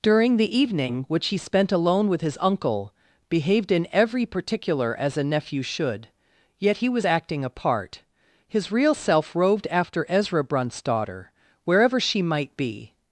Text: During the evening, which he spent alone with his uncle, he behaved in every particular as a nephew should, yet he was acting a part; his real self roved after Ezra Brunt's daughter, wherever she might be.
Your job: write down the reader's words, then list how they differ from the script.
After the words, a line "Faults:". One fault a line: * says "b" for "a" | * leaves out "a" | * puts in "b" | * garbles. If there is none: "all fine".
During the evening, which he spent alone with his uncle, behaved in every particular as a nephew should, yet he was acting a part; his real self roved after Ezra Brunt's daughter, wherever she might be.
Faults:
* leaves out "he"